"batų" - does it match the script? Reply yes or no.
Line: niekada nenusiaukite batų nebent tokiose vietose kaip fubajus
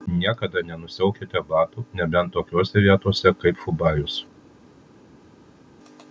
yes